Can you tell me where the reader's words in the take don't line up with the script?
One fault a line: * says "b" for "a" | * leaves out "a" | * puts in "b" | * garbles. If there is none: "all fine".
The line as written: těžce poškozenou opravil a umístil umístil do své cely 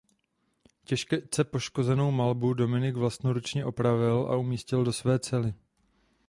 * puts in "malbu dominik vlastnoručně"
* leaves out "umístil"